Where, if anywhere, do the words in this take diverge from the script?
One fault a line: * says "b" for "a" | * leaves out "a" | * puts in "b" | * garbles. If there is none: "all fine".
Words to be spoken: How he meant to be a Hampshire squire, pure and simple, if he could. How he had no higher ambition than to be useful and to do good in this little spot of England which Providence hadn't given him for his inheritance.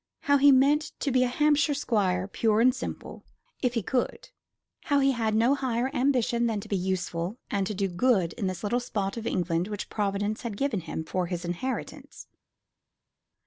* says "had" for "hadn't"